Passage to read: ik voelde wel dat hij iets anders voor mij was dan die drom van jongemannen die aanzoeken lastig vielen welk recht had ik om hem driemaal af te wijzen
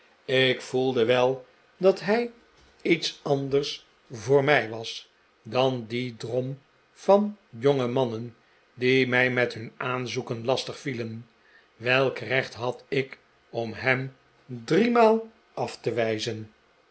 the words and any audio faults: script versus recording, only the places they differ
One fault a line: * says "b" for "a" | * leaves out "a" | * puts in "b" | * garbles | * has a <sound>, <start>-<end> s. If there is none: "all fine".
* puts in "mij met hun"